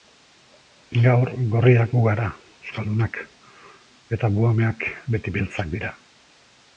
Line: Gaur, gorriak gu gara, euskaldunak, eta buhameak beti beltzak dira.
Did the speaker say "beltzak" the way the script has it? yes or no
yes